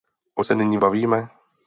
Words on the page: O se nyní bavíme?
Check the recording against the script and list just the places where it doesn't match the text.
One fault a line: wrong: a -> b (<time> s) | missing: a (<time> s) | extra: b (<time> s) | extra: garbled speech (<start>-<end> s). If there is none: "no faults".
no faults